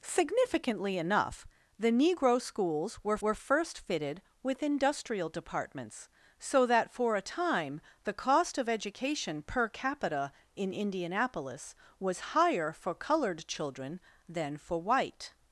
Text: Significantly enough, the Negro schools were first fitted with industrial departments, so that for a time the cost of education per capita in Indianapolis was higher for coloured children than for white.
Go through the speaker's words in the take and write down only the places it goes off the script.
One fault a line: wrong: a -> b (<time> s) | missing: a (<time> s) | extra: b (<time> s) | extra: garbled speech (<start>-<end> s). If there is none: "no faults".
extra: were (3.2 s)